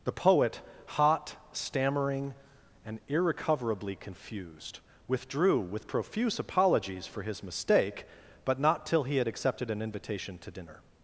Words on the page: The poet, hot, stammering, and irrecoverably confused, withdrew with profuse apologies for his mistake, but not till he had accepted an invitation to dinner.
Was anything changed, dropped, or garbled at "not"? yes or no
no